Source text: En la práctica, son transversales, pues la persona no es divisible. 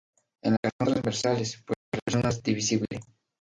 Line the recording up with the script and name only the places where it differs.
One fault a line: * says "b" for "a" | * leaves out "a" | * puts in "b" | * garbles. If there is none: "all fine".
* leaves out "la práctica"
* leaves out "no"